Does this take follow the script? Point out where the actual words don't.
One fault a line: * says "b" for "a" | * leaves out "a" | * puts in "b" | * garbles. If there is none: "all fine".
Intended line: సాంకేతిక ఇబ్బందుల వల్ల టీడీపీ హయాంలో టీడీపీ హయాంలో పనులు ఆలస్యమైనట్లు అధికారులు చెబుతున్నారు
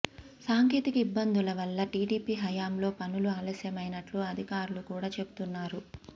* leaves out "టీడీపీ హయాంలో"
* puts in "కూడా"